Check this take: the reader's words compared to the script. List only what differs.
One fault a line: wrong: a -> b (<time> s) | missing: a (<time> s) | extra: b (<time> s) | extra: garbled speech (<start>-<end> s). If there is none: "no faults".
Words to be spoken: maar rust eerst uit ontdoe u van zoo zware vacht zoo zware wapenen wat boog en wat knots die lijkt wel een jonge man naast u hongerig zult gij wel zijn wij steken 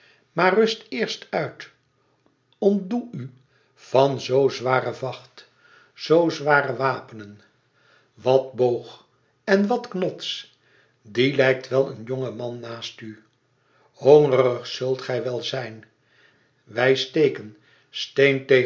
no faults